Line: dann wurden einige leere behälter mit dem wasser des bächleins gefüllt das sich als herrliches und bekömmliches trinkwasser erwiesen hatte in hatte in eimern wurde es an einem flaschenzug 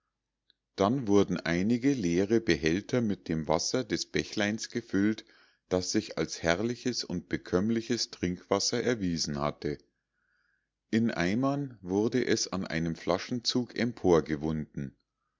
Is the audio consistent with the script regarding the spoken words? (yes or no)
no